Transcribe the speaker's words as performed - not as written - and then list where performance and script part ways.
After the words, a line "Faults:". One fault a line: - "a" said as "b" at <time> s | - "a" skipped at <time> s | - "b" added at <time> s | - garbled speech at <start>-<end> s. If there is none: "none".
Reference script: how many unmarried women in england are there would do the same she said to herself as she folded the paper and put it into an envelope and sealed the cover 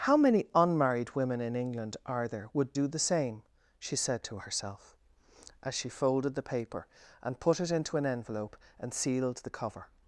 how many unmarried women in england are there would do the same she said to herself as she folded the paper and put it into an envelope and sealed the cover
Faults:
none